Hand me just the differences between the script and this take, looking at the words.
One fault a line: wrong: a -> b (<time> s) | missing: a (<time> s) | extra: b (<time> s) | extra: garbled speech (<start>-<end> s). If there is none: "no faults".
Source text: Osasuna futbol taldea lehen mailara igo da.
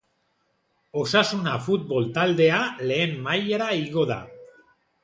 no faults